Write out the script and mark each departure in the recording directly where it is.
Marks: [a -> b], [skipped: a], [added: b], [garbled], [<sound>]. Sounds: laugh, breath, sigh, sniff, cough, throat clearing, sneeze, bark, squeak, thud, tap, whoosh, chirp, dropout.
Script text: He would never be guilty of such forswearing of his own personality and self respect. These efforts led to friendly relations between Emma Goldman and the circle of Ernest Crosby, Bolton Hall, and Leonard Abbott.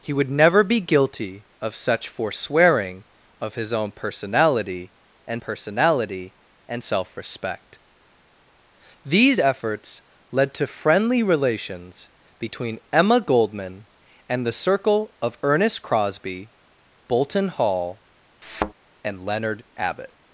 He would never be guilty of such forswearing of his own personality and [added: personality and] self respect. These efforts led to friendly relations between Emma Goldman and the circle of Ernest Crosby, Bolton Hall, [thud] and Leonard Abbott.